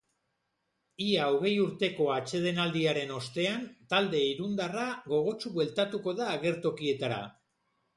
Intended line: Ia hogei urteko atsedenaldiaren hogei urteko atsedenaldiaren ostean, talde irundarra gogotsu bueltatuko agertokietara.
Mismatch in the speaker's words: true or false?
true